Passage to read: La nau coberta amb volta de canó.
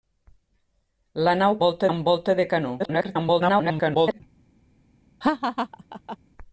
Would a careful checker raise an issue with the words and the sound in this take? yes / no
yes